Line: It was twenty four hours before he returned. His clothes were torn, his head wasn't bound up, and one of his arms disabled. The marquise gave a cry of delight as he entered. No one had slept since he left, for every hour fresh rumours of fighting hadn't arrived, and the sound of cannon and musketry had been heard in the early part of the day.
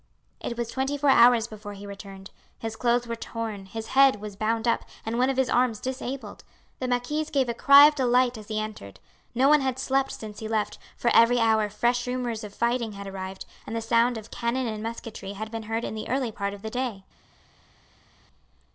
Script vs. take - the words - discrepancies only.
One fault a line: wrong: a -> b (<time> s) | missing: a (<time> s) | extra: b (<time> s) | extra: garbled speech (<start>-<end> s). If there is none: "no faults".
wrong: wasn't -> was (4.2 s)
wrong: hadn't -> had (12.9 s)